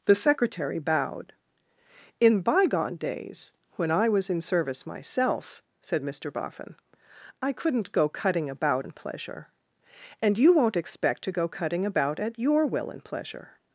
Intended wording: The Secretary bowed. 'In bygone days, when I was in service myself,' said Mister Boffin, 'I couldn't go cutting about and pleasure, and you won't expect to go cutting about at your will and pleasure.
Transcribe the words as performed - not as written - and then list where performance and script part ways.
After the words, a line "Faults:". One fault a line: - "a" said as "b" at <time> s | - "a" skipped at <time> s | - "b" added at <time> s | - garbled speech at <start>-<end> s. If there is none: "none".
The Secretary bowed. 'In bygone days, when I was in service myself,' said Mister Boffin, 'I couldn't go cutting about and pleasure, and you won't expect to go cutting about at your will and pleasure.
Faults:
none